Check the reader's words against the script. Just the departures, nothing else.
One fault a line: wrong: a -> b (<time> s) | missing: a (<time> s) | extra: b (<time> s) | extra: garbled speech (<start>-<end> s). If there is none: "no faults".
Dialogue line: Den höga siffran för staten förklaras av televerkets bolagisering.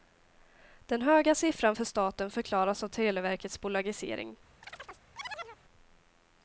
no faults